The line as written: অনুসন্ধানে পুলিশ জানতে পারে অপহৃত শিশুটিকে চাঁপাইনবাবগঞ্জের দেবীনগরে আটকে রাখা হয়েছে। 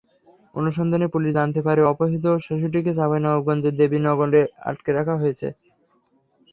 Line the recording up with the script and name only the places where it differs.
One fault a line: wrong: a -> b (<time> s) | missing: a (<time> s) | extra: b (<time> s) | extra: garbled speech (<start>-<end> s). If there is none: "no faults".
no faults